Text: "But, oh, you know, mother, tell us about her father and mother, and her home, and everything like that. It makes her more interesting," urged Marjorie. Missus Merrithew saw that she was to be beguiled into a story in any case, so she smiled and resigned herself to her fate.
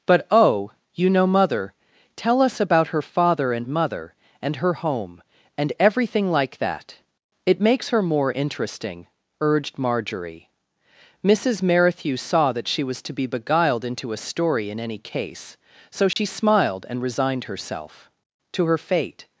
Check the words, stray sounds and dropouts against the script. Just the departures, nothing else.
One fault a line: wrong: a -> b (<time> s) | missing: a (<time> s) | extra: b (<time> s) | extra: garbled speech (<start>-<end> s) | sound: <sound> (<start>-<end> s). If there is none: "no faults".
sound: dropout (16.1-16.2 s)